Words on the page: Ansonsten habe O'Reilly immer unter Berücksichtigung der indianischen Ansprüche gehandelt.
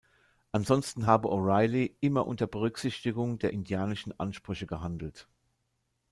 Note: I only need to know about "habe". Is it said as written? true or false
true